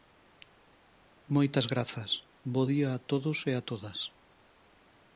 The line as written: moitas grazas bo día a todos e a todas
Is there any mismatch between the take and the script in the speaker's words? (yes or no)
no